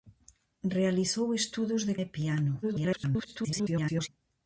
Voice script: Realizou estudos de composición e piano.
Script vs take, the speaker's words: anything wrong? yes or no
yes